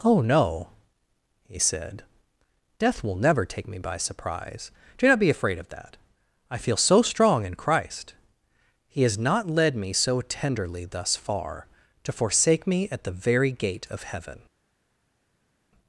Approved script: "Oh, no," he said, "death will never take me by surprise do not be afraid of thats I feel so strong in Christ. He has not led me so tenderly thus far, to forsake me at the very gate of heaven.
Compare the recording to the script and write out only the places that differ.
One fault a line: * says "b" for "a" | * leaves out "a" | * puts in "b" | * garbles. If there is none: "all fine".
* says "that" for "thats"